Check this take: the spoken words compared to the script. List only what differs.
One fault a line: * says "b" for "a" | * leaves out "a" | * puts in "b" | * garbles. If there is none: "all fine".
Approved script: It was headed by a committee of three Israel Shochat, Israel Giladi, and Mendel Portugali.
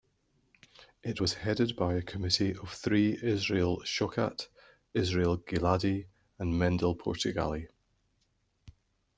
all fine